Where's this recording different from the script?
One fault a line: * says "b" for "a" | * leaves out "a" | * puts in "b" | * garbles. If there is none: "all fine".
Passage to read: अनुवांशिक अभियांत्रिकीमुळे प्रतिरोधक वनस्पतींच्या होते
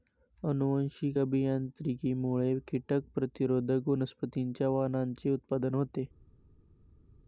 * puts in "कीटक"
* puts in "वाणांचे उत्पादन"